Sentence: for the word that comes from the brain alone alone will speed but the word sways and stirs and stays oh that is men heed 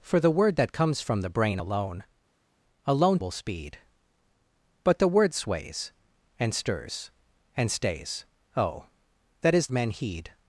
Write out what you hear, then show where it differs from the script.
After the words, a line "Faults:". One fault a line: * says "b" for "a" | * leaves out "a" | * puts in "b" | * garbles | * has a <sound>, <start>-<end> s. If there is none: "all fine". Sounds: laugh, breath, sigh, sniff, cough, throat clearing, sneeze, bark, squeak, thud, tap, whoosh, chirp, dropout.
for the word that comes from the brain alone alone will speed but the word sways and stirs and stays oh that is men heed
Faults:
all fine